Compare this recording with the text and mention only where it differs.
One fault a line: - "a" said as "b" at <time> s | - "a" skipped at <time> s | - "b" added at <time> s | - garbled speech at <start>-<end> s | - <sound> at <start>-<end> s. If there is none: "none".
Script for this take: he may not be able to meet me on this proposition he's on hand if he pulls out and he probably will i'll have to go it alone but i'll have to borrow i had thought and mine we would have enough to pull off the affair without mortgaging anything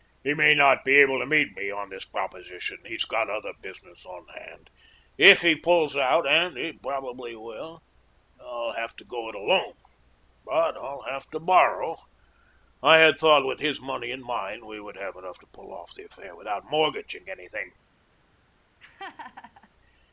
- "got other business" added at 3.0 s
- "with his money" added at 13.4 s
- laugh at 18.8-19.7 s